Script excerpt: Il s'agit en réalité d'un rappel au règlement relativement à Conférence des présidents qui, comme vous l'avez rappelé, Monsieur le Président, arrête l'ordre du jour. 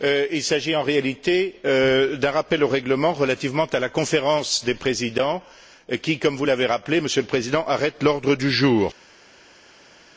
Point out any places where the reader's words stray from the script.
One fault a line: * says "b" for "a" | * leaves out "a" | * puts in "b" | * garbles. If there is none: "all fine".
* puts in "la"